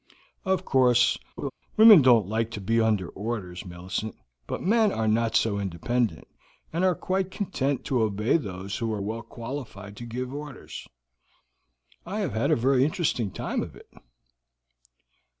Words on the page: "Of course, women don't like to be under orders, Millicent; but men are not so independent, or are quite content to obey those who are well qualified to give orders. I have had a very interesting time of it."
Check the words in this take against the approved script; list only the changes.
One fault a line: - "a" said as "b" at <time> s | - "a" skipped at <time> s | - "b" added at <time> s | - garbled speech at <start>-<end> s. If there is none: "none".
- "or" said as "and" at 6.7 s